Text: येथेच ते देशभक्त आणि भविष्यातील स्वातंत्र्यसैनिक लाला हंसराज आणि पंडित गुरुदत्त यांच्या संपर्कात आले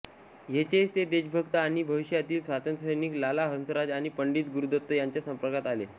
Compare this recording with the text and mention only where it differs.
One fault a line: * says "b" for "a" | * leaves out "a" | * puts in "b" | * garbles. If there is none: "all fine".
all fine